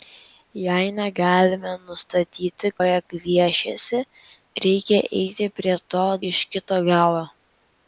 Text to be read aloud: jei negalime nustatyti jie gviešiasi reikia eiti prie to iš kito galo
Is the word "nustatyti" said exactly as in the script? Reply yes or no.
yes